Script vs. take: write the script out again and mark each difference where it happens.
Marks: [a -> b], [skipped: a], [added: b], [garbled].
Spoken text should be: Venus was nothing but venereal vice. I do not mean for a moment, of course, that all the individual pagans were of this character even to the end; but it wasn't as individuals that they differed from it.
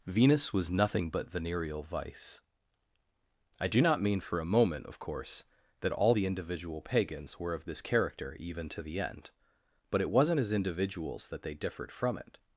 Venus was nothing but venereal vice. I do not mean for a moment, of course, that all the individual pagans were of this character even to the end; but it wasn't as individuals that they differed from it.